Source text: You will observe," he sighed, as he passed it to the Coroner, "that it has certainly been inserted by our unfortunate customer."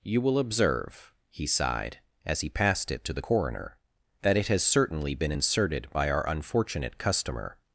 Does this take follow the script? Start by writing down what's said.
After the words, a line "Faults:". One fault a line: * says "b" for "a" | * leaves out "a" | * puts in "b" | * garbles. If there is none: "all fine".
You will observe," he sighed, as he passed it to the Coroner, "that it has certainly been inserted by our unfortunate customer."
Faults:
all fine